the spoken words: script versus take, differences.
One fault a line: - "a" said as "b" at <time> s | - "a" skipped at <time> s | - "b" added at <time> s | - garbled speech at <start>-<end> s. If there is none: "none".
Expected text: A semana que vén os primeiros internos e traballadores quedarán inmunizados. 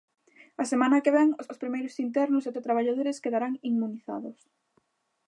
- "os" added at 1.5 s
- "e" added at 2.5 s